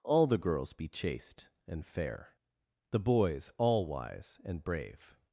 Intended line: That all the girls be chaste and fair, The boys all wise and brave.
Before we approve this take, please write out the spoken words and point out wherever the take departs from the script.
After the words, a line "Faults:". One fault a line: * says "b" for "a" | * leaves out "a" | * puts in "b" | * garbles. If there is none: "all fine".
all the girls be chaste and fair, The boys all wise and brave.
Faults:
* leaves out "That"